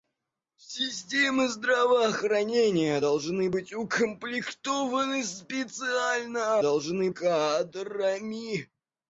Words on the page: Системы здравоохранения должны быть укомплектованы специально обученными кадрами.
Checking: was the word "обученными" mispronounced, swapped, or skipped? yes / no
yes